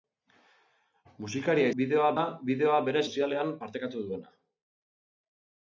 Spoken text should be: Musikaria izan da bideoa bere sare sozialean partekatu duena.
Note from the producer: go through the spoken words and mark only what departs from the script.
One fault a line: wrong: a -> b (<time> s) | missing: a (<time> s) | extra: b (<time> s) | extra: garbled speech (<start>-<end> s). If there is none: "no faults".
wrong: izan -> bideoa (1.8 s)
missing: sare (3.0 s)